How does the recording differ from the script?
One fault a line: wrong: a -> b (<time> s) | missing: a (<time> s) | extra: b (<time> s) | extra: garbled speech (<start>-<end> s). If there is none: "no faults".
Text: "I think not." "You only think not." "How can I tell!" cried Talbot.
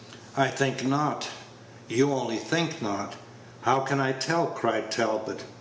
no faults